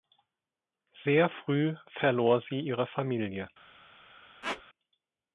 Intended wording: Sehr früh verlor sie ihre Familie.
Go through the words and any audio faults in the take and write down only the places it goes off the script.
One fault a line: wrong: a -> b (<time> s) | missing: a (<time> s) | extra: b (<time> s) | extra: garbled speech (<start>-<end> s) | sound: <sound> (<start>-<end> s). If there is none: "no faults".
sound: squeak (4.4-4.6 s)